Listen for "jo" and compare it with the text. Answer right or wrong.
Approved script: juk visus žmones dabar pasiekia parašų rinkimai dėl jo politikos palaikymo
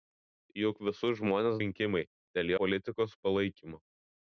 wrong